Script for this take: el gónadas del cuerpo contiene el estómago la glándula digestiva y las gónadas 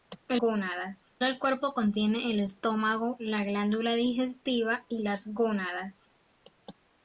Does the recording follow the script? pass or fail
pass